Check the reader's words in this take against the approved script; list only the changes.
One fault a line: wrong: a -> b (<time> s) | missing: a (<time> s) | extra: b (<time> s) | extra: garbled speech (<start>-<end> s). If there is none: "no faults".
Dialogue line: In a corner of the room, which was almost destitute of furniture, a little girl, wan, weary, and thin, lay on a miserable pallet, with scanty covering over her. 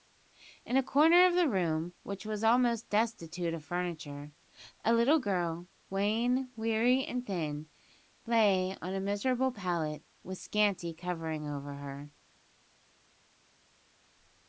no faults